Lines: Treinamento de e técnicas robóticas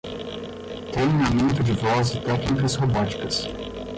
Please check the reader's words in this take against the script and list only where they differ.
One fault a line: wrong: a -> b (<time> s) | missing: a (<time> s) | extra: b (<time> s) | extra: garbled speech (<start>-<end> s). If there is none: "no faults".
extra: voz (1.7 s)